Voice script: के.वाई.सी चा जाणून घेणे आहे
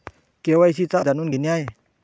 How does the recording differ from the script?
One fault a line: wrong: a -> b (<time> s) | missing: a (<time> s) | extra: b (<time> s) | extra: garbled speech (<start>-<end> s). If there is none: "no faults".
no faults